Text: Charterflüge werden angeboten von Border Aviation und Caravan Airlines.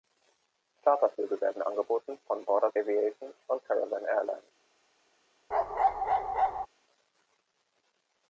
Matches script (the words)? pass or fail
pass